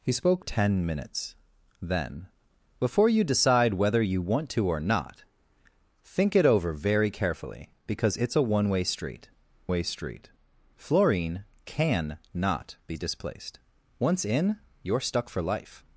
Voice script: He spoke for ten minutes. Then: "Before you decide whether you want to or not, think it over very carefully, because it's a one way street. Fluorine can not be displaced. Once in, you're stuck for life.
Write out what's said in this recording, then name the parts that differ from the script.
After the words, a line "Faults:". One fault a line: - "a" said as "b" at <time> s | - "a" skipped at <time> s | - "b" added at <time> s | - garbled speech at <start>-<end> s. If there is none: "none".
He spoke ten minutes. Then: "Before you decide whether you want to or not, think it over very carefully, because it's a one way street way street. Fluorine can not be displaced. Once in, you're stuck for life.
Faults:
- "for" skipped at 0.5 s
- "way street" added at 9.7 s